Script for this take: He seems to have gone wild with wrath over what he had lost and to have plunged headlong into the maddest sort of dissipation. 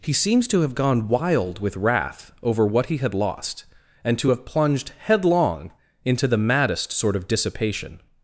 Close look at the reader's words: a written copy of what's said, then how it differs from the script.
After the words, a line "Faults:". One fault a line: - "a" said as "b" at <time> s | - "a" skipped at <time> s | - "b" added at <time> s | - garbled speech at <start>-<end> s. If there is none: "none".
He seems to have gone wild with wrath over what he had lost and to have plunged headlong into the maddest sort of dissipation.
Faults:
none